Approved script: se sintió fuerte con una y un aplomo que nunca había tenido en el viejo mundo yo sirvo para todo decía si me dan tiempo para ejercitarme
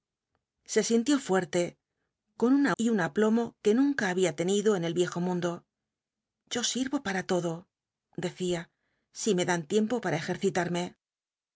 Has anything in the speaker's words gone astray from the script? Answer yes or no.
no